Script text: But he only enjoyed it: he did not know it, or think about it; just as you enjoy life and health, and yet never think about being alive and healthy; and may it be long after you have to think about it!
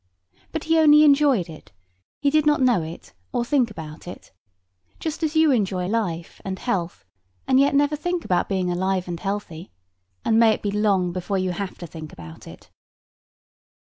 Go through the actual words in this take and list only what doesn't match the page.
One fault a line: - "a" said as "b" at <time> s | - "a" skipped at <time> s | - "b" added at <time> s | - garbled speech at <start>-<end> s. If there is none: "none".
- "after" said as "before" at 11.1 s